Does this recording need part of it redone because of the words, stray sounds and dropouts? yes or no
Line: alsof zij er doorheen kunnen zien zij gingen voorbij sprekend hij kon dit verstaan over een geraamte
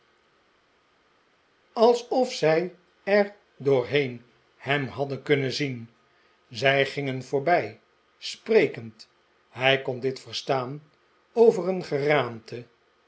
yes